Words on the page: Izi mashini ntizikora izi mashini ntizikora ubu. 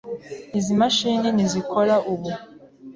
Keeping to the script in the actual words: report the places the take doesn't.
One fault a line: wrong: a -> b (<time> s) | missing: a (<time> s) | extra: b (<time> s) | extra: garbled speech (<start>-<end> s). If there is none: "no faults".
missing: izi mashini ntizikora (2.0 s)